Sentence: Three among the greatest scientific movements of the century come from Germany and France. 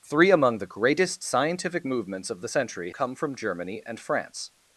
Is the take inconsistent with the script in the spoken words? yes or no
no